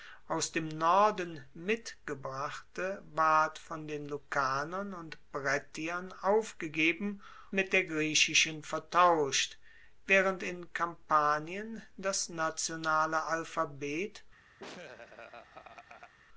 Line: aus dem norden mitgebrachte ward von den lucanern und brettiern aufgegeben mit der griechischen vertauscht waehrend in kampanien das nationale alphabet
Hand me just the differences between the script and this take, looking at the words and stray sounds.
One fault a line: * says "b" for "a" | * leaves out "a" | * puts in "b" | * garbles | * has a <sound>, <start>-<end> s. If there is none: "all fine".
* has a laugh, 14.6-16.1 s